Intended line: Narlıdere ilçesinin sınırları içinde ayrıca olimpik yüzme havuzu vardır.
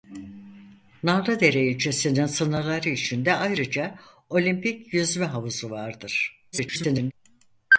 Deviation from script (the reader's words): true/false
true